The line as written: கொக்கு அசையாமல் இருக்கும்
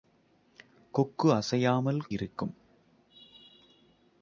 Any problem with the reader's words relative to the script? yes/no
no